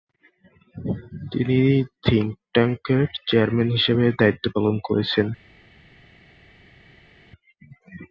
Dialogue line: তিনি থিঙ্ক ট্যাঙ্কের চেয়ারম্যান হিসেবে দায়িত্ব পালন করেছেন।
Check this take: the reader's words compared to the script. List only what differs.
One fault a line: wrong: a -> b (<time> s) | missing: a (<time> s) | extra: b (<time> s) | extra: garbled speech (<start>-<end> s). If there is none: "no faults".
no faults